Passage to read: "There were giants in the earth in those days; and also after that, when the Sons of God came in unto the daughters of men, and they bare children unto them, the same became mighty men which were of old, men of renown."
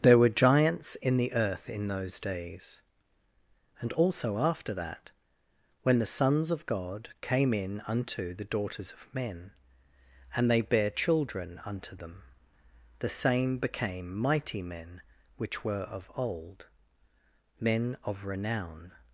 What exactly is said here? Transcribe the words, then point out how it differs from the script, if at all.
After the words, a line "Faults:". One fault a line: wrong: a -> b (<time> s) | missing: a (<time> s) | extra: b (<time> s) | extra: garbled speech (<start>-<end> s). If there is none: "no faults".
"There were giants in the earth in those days; and also after that, when the Sons of God came in unto the daughters of men, and they bare children unto them, the same became mighty men which were of old, men of renown."
Faults:
no faults